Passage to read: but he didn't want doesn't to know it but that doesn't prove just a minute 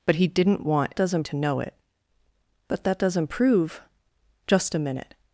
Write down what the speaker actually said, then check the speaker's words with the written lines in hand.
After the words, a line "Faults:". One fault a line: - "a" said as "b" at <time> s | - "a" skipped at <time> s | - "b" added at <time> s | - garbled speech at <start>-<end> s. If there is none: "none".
but he didn't want doesn't to know it but that doesn't prove just a minute
Faults:
none